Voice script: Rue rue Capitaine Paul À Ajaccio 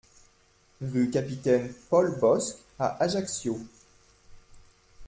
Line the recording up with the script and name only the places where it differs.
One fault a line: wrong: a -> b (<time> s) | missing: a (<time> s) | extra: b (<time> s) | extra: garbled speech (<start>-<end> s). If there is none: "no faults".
missing: rue (1.1 s)
extra: Bosc (2.2 s)